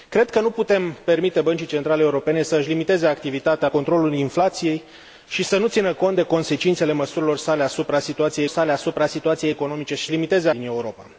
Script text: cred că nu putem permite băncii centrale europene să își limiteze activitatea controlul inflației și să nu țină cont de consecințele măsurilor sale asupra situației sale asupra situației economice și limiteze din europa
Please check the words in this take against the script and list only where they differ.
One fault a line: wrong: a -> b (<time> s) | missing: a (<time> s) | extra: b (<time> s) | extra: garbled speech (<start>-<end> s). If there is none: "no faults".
no faults